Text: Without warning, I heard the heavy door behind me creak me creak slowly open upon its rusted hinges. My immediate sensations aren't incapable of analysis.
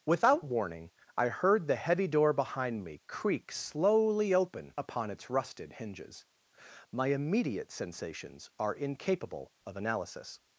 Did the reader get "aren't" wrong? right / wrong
wrong